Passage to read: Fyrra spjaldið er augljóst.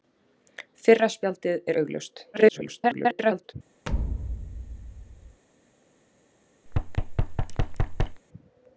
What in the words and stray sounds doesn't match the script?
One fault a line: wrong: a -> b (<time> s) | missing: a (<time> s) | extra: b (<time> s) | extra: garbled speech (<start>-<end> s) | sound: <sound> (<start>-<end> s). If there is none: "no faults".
extra: garbled speech (2.3-3.5 s)
sound: thud (3.9-5.4 s)
sound: thud (6.7-8.2 s)